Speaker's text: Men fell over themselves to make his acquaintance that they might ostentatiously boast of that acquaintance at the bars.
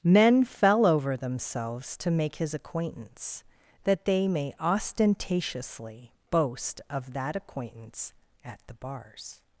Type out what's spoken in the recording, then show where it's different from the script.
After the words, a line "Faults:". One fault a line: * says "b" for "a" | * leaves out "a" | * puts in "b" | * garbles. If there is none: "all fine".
Men fell over themselves to make his acquaintance that they may ostentatiously boast of that acquaintance at the bars.
Faults:
* says "may" for "might"